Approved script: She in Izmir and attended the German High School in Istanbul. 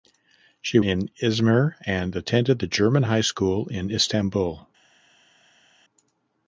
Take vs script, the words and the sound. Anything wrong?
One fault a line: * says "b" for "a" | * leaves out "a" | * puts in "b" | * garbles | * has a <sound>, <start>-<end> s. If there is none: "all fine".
all fine